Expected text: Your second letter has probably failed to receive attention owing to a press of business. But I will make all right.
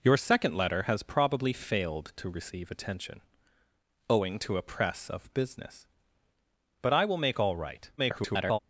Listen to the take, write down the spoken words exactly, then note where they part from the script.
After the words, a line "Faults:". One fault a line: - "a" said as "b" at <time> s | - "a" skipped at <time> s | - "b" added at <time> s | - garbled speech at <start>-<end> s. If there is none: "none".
Your second letter has probably failed to receive attention owing to a press of business. But I will make all right. [garbled]
Faults:
- garbled speech at 8.0-8.6 s